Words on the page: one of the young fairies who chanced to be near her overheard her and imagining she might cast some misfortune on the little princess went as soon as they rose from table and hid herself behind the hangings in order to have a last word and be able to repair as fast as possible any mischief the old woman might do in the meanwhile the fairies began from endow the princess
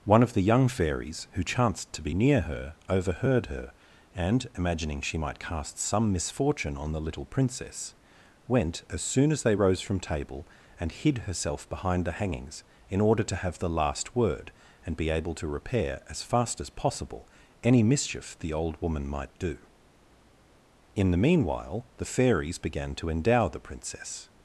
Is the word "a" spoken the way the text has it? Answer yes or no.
no